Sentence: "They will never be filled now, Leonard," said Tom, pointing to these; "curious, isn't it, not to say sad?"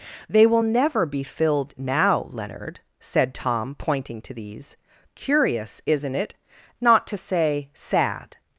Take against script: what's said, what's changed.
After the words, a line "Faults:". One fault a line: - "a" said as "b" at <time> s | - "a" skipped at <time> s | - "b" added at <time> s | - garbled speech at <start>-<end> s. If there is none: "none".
"They will never be filled now, Leonard," said Tom, pointing to these; "curious, isn't it, not to say sad?"
Faults:
none